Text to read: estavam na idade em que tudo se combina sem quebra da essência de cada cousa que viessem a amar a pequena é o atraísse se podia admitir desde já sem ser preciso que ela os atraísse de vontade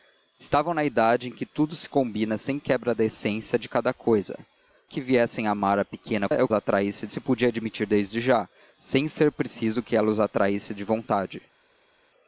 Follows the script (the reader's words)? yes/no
yes